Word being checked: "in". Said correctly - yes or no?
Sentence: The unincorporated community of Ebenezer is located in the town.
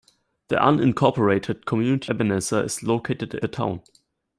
no